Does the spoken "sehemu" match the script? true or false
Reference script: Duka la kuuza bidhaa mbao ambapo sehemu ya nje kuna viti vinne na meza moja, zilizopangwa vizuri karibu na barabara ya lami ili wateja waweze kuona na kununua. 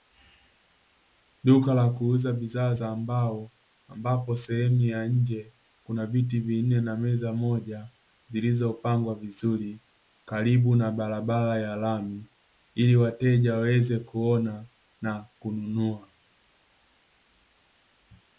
true